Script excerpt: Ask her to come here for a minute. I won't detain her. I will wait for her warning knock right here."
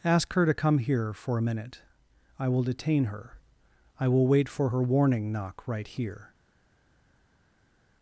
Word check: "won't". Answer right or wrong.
wrong